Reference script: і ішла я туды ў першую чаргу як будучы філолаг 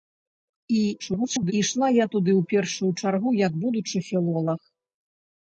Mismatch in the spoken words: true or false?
true